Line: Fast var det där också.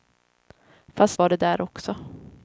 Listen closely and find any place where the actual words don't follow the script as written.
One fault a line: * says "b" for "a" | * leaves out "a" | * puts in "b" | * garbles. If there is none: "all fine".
all fine